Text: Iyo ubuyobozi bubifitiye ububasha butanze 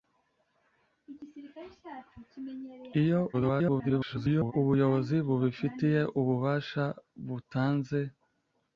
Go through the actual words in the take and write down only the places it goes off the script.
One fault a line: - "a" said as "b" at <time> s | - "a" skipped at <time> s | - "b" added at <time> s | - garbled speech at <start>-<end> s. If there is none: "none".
- garbled speech at 3.3-4.5 s